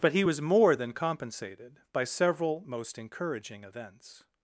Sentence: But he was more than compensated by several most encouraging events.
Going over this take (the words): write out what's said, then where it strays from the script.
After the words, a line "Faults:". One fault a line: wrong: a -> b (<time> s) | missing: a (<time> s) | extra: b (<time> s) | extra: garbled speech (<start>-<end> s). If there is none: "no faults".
But he was more than compensated by several most encouraging events.
Faults:
no faults